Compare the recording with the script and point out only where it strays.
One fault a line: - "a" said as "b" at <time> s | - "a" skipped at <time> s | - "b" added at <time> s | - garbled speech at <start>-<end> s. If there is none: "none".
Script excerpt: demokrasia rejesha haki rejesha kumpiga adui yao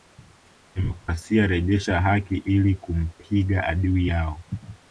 - "rejesha" said as "ili" at 2.4 s